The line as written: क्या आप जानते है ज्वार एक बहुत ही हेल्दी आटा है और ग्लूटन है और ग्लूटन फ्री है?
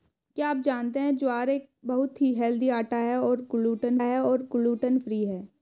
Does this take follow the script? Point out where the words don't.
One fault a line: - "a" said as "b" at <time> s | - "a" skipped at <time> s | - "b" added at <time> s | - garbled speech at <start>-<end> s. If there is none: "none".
none